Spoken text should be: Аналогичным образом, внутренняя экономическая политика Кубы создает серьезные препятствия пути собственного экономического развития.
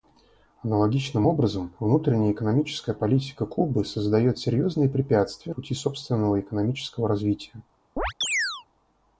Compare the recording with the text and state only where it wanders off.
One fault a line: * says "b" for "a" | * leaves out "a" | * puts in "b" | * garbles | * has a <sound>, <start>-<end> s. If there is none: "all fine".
* has a chirp, 8.0-8.6 s